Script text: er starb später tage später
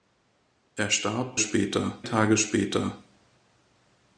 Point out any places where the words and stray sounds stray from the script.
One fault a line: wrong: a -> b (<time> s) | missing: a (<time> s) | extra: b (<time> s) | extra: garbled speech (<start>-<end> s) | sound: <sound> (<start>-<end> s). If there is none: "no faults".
no faults